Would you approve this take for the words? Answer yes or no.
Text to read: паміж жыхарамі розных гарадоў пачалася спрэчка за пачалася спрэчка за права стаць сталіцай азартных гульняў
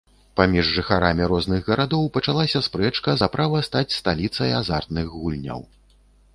no